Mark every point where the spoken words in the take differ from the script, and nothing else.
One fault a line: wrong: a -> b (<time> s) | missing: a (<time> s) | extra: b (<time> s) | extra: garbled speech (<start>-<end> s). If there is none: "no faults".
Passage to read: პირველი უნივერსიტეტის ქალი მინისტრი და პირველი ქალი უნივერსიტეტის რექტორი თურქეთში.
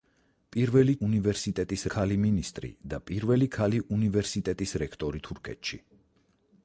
no faults